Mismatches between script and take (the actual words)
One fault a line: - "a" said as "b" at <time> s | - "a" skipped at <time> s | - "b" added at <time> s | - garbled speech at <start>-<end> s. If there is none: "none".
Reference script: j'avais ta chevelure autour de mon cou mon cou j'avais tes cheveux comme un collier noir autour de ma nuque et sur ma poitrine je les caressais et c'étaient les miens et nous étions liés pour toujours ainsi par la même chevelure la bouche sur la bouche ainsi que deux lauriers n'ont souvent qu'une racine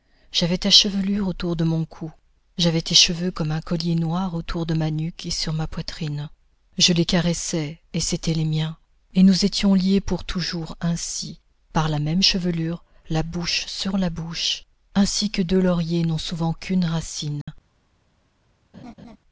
- "mon cou" skipped at 2.1 s